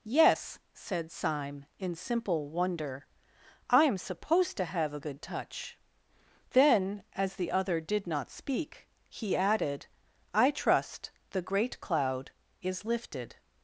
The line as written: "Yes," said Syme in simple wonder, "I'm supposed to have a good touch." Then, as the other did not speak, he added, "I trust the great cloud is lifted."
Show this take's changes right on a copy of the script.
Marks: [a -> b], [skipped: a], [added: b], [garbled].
"Yes," said Syme in simple wonder, "I'm supposed to have a good touch." Then, as the other did not speak, he added, "I trust the great cloud is lifted."